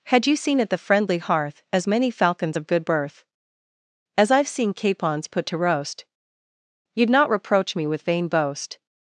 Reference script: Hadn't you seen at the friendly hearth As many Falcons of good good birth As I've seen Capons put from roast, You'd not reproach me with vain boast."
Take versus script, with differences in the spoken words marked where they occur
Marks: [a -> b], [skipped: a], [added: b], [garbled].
[Hadn't -> Had] you seen at the friendly hearth As many Falcons of good [skipped: good] birth As I've seen Capons put [from -> to] roast, You'd not reproach me with vain boast."